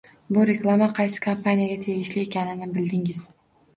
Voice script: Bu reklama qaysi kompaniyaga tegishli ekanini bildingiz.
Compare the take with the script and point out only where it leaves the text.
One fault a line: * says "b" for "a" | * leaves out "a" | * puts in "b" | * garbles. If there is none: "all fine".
all fine